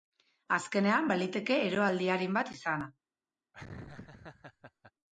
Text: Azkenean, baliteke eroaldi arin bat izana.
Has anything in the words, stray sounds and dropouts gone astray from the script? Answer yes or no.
yes